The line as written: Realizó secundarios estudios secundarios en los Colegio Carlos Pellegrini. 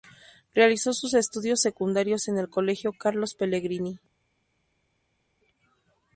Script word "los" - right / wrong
wrong